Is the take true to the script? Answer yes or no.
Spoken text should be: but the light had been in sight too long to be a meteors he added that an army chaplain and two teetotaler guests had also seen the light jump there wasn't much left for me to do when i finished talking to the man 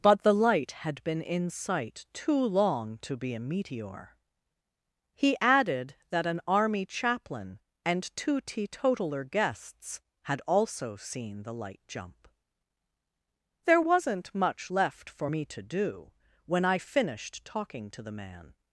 no